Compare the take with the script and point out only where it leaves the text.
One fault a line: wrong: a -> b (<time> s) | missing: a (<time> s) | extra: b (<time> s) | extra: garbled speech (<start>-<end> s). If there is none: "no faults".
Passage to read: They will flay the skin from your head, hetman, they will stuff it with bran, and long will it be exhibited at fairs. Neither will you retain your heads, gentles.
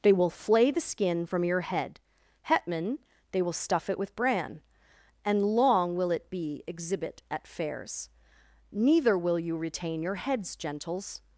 wrong: exhibited -> exhibit (6.7 s)